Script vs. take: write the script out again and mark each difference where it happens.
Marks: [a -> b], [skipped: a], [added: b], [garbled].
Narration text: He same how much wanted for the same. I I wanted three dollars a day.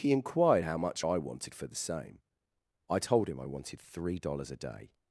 He [same -> inquired] how much [added: I] wanted for the same. I [added: told him] I wanted three dollars a day.